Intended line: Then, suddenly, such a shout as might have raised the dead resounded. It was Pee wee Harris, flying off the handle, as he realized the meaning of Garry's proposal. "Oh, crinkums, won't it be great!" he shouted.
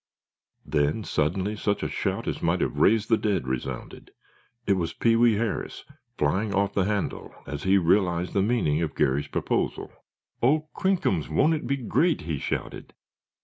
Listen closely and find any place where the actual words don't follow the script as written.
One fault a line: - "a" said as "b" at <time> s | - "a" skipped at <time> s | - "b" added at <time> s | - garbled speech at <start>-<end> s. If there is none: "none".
none